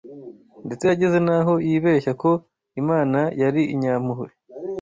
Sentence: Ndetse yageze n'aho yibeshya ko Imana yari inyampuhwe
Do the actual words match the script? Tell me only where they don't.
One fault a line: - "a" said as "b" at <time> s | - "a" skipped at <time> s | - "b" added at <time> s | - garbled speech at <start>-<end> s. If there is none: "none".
none